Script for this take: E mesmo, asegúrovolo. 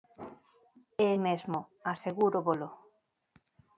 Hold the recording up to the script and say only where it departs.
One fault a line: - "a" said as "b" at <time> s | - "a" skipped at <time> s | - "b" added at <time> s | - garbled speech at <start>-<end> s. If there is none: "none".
none